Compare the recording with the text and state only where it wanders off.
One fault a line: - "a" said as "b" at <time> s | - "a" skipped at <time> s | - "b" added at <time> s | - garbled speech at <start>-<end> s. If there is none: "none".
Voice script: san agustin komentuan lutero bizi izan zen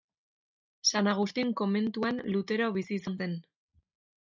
none